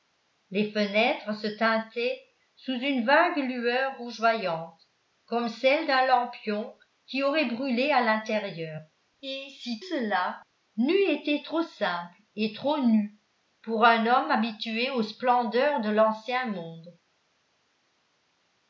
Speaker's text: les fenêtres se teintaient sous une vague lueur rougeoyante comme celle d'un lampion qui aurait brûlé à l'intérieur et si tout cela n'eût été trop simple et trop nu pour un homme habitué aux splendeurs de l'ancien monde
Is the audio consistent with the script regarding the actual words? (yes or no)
no